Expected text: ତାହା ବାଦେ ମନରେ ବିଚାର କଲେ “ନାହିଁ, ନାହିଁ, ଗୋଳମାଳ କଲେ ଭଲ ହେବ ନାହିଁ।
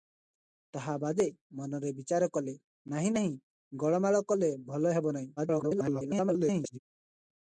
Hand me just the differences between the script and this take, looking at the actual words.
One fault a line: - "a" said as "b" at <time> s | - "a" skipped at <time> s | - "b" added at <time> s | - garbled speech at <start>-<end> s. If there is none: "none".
- garbled speech at 5.4-6.8 s